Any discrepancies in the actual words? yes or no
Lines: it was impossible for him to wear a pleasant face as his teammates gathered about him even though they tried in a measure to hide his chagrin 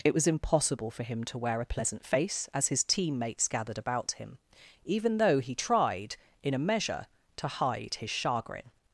yes